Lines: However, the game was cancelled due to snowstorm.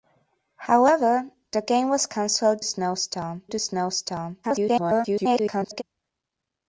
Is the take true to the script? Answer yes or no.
no